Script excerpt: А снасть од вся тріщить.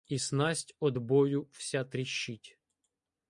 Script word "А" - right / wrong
wrong